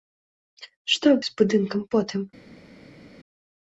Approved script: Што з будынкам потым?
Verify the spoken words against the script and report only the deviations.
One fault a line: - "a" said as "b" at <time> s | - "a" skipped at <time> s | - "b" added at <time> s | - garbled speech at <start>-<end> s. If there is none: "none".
none